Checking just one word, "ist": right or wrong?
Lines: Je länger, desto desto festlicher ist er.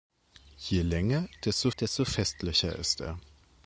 right